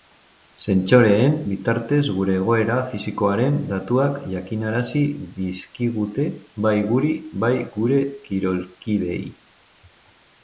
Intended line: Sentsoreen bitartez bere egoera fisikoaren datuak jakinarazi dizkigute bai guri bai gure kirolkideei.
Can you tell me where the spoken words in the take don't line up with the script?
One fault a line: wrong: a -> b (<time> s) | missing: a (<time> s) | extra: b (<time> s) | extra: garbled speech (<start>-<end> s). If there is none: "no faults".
wrong: bere -> gure (2.2 s)